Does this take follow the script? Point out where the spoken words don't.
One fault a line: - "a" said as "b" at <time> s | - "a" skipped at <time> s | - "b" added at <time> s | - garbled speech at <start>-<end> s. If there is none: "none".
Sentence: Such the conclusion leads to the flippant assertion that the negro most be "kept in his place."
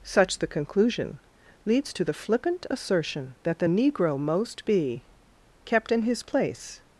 none